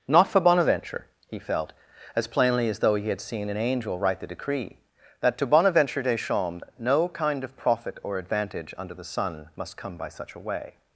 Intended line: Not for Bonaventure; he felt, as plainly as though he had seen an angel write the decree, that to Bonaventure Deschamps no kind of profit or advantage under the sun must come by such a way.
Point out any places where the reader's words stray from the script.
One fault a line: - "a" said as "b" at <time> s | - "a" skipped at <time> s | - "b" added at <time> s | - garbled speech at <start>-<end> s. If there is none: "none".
none